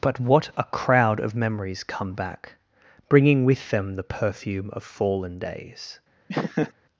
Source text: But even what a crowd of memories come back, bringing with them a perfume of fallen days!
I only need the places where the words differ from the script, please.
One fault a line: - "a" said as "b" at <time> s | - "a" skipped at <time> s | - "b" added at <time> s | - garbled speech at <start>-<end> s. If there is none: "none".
- "even" skipped at 0.2 s
- "a" said as "the" at 3.9 s